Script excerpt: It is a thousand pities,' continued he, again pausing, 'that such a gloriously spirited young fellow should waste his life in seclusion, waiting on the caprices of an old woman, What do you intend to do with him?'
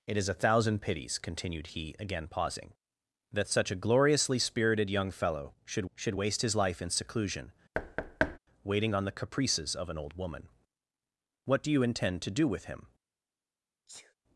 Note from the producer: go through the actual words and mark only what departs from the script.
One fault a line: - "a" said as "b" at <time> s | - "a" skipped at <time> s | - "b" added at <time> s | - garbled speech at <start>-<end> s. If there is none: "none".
- "should" added at 5.9 s